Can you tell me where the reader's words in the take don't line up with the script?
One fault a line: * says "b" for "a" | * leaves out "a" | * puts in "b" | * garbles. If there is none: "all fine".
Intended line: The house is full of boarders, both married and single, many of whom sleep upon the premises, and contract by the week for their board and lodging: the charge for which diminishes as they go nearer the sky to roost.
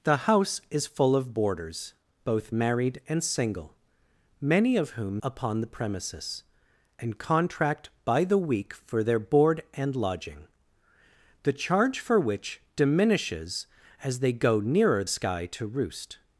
* leaves out "sleep"
* leaves out "the"